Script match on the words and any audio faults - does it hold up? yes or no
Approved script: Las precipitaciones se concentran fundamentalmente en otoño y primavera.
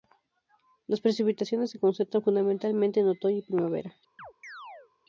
no